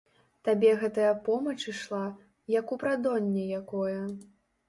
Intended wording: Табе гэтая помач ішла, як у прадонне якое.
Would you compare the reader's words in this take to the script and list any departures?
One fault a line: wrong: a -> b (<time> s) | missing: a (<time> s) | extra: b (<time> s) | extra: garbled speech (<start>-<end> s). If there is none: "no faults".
no faults